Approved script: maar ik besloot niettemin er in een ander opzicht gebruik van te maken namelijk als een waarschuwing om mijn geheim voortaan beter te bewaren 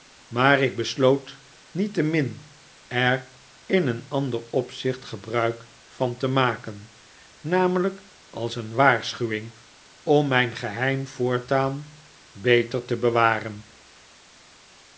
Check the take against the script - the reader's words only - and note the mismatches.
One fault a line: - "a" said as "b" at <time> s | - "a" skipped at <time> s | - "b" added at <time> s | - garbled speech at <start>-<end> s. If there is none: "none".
none